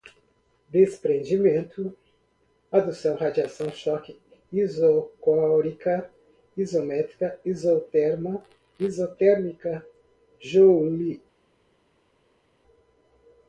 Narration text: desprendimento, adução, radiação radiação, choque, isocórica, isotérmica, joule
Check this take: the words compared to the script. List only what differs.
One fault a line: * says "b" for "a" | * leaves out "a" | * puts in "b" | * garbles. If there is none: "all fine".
* leaves out "radiação"
* puts in "isométrica isoterma"